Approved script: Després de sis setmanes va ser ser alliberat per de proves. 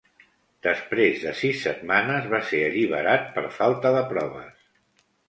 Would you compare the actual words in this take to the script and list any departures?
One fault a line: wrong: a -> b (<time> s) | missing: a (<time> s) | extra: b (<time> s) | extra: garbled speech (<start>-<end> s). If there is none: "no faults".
missing: ser (2.6 s)
extra: falta (3.6 s)